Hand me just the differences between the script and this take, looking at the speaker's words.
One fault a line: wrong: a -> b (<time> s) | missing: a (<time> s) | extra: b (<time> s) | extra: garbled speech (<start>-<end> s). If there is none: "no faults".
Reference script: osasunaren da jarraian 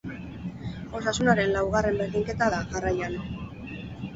extra: laugarren berdinketa (1.6 s)